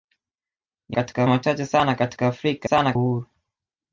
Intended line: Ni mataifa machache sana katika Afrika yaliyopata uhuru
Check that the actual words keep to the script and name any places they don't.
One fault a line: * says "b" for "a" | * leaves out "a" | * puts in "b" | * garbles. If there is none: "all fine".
* says "katika" for "mataifa"
* says "sana" for "yaliyopata"